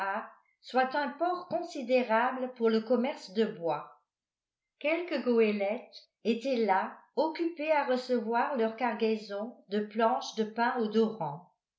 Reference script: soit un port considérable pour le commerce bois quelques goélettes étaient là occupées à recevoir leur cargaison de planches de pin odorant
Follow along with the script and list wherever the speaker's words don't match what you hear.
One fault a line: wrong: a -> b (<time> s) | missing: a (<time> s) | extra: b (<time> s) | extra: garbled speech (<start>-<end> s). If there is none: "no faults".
extra: de (3.3 s)